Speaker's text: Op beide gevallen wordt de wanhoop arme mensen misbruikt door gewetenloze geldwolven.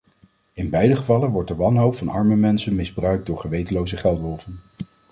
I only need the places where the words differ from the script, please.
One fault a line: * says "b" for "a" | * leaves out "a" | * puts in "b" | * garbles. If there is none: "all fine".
* says "In" for "Op"
* puts in "van"